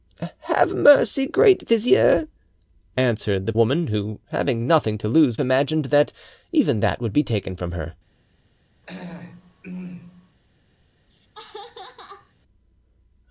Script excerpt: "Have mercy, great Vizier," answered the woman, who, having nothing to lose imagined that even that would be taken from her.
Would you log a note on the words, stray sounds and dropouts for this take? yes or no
yes